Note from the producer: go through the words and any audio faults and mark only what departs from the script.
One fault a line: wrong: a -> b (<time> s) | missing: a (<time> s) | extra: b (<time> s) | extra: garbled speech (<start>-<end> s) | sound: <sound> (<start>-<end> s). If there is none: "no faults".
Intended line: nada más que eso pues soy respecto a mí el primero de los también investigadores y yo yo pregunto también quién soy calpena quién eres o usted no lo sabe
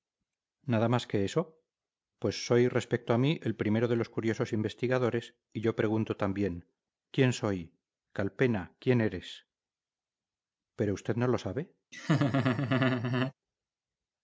wrong: también -> curiosos (4.1 s)
missing: yo (5.8 s)
wrong: o -> pero (10.8 s)
sound: laugh (11.9-13.3 s)